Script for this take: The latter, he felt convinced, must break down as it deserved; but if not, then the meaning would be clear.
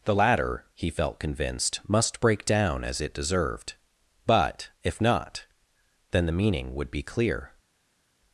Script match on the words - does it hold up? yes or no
yes